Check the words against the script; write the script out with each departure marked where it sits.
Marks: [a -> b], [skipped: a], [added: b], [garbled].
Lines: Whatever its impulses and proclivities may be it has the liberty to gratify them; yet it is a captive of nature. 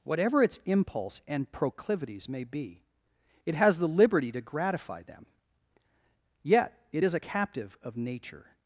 Whatever its [impulses -> impulse] and proclivities may be it has the liberty to gratify them; yet it is a captive of nature.